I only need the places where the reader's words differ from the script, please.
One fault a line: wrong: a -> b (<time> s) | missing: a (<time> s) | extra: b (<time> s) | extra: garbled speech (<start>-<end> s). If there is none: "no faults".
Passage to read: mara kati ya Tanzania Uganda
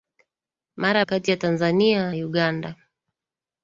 no faults